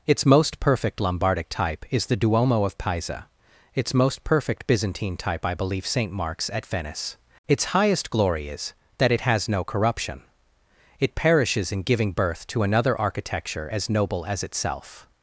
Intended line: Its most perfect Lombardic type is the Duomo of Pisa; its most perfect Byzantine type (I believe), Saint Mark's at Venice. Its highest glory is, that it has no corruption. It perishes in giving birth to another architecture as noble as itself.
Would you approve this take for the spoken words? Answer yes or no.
yes